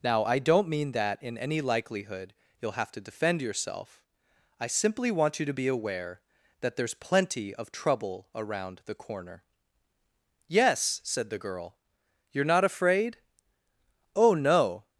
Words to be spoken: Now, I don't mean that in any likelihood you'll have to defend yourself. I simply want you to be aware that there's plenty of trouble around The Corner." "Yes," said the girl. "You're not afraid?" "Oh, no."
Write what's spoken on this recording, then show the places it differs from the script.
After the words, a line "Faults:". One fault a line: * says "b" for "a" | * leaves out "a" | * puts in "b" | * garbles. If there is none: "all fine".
Now, I don't mean that in any likelihood you'll have to defend yourself. I simply want you to be aware that there's plenty of trouble around The Corner." "Yes," said the girl. "You're not afraid?" "Oh, no."
Faults:
all fine